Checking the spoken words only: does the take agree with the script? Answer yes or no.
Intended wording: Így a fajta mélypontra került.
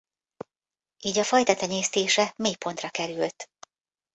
no